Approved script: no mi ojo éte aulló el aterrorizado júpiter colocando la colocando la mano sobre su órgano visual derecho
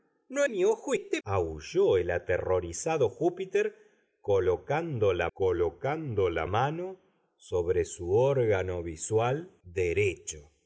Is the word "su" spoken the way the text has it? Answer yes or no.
yes